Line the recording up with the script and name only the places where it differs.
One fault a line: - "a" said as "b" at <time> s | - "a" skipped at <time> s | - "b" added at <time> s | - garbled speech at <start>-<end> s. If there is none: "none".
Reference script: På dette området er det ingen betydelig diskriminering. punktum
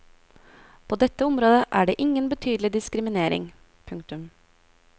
none